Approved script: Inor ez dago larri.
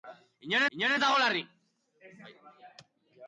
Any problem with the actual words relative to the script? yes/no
yes